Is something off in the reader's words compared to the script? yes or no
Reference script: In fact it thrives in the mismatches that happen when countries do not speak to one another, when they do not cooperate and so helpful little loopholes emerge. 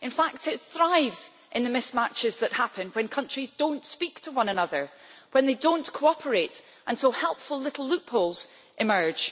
no